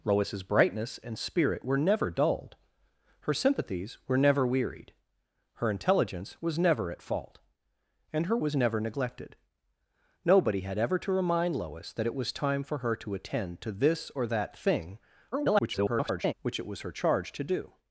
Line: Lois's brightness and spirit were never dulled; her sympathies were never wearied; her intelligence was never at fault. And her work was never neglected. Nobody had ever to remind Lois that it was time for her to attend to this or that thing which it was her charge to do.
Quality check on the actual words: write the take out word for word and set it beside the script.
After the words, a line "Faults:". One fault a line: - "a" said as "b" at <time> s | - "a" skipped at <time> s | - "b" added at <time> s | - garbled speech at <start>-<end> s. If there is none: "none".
Lois's brightness and spirit were never dulled; her sympathies were never wearied; her intelligence was never at fault. And her was never neglected. Nobody had ever to remind Lois that it was time for her to attend to this or that thing [garbled] which it was her charge to do.
Faults:
- "work" skipped at 8.4 s
- garbled speech at 15.3-16.3 s